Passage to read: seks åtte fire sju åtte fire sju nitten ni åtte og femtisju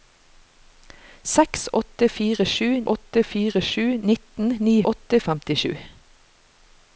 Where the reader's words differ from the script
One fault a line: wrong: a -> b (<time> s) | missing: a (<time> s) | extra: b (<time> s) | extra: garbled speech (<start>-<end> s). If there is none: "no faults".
no faults